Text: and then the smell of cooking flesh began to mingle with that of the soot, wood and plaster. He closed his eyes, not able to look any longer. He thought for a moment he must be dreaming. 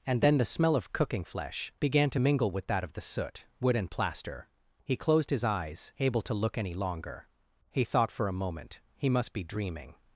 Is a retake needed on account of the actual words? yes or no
yes